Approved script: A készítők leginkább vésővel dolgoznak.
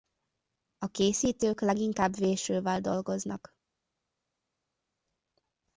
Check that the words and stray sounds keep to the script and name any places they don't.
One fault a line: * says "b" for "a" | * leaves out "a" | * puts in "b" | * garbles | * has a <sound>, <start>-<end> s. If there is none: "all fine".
all fine